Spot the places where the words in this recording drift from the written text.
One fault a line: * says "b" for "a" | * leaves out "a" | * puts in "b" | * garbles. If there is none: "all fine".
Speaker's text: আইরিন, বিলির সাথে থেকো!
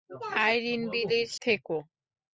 * leaves out "সাথে"